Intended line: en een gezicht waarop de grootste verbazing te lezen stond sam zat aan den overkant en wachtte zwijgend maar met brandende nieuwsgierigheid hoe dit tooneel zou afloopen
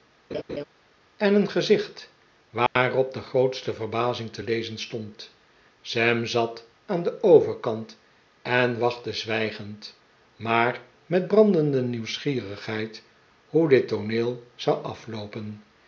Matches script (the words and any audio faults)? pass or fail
fail